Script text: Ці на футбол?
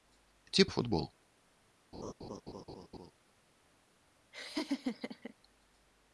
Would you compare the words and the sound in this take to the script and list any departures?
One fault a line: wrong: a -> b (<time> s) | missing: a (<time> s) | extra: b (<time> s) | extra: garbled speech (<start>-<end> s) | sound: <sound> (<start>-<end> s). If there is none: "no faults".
sound: laugh (1.9-3.1 s)
sound: laugh (4.3-5.3 s)